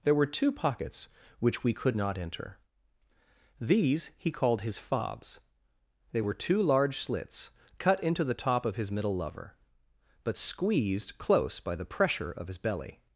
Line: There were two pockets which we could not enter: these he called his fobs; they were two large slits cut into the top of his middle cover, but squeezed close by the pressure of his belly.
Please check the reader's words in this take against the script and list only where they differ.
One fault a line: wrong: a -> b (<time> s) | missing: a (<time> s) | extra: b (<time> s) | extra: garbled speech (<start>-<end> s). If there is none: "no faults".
wrong: cover -> lover (9.1 s)